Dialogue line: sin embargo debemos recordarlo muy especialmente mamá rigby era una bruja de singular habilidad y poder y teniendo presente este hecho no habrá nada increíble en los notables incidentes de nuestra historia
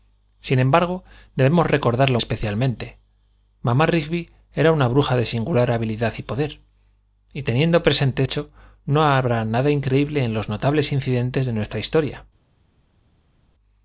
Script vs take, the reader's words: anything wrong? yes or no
yes